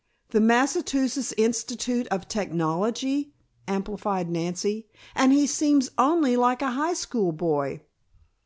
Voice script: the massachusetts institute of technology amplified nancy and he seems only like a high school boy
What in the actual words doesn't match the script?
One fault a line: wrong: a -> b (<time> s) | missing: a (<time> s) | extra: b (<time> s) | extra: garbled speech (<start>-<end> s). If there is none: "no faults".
no faults